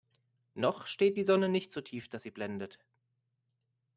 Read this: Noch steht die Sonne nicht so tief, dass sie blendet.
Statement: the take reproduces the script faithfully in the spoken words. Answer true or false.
true